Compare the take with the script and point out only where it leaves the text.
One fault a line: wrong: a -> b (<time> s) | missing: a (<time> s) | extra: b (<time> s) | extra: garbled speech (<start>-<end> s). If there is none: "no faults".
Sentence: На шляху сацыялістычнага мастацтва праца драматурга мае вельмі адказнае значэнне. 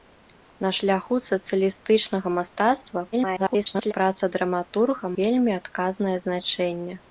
extra: garbled speech (3.1-3.9 s)
missing: мае (5.1 s)